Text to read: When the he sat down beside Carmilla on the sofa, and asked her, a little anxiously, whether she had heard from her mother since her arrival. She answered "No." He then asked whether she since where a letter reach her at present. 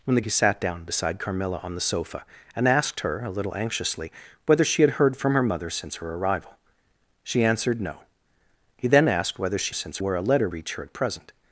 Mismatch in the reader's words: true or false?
false